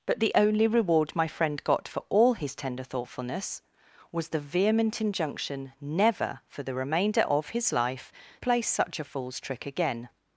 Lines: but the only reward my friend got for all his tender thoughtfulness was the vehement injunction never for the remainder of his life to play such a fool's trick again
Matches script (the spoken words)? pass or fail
fail